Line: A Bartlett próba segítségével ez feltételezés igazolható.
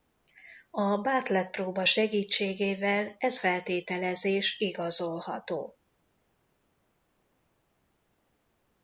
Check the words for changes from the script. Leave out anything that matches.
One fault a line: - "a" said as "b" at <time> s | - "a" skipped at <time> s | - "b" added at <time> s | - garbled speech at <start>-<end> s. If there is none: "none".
none